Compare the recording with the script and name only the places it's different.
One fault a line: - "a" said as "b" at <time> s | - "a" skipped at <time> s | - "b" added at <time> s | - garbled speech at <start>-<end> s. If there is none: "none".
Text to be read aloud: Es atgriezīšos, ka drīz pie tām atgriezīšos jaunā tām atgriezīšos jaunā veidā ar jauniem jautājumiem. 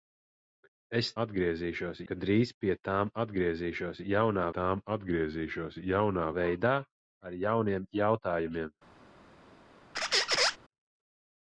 none